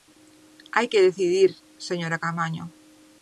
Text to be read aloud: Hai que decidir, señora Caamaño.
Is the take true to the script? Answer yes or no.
yes